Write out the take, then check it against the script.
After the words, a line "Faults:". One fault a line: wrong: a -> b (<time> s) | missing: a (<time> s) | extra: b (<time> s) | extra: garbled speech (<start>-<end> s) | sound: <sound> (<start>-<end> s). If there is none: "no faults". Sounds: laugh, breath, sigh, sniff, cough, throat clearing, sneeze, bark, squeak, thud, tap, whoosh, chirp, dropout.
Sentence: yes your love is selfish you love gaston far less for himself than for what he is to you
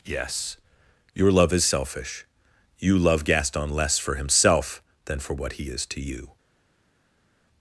yes your love is selfish you love gaston less for himself than for what he is to you
Faults:
missing: far (3.7 s)